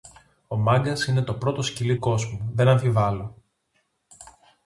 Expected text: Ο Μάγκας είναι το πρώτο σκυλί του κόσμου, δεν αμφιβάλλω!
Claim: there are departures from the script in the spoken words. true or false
true